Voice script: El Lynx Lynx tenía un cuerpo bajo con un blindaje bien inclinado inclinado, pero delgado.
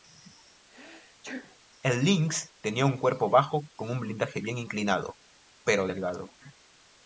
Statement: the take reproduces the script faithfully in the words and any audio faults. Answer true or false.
false